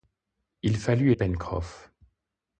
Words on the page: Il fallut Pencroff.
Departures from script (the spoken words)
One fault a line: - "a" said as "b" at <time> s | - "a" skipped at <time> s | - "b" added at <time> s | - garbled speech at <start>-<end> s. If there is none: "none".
none